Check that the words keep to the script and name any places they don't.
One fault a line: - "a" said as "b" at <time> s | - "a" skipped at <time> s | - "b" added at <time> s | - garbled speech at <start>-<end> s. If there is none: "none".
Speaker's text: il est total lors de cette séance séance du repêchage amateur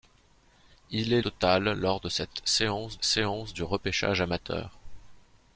none